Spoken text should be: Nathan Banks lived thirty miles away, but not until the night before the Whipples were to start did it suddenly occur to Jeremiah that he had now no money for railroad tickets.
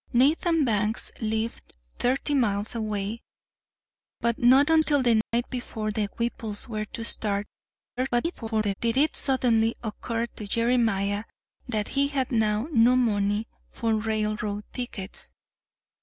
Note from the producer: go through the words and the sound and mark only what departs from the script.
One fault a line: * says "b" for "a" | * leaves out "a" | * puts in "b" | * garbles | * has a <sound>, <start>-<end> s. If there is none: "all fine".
* has a dropout, 5.2-5.3 s
* garbles